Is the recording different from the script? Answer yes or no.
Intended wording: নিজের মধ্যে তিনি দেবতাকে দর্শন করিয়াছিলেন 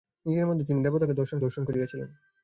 yes